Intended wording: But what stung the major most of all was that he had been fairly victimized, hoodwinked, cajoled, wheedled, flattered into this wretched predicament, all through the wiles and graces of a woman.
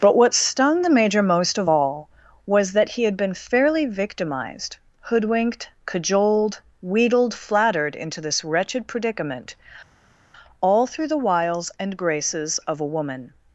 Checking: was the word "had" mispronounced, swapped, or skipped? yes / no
no